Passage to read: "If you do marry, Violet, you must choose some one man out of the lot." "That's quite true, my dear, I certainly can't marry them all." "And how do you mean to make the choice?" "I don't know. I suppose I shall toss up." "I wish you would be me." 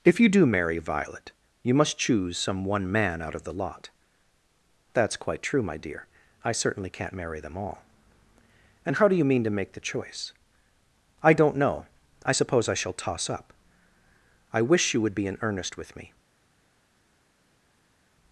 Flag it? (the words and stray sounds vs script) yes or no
yes